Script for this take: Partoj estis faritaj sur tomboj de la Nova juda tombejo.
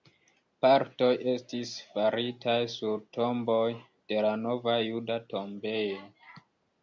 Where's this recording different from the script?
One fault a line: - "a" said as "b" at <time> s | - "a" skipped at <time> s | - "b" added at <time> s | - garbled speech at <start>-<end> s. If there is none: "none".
none